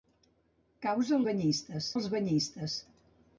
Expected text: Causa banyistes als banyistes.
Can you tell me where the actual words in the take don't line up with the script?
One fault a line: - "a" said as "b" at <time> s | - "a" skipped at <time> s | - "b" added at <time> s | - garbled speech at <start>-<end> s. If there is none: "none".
none